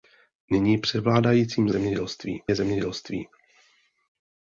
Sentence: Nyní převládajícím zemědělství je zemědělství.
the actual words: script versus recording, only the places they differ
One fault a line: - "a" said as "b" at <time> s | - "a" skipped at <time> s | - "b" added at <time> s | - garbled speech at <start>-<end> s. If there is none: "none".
none